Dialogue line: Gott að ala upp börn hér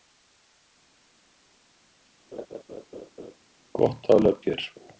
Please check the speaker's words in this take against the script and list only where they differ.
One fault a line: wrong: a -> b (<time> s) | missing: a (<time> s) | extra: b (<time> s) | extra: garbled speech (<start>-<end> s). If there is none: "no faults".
missing: börn (4.4 s)